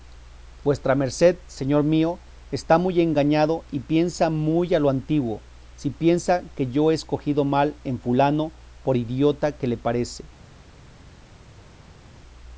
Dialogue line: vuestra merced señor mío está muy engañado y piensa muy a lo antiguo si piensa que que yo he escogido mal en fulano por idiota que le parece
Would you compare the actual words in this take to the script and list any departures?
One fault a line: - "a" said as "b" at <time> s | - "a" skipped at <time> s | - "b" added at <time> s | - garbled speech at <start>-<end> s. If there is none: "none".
- "que" skipped at 6.7 s